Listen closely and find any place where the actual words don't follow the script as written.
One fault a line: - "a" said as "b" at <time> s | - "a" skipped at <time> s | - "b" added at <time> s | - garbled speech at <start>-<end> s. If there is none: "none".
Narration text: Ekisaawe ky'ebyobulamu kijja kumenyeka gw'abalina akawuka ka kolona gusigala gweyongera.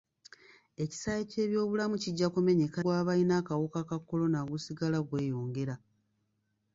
none